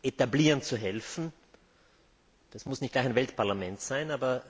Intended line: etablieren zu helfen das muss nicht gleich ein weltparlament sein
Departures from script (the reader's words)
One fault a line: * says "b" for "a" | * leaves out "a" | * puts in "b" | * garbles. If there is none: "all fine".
all fine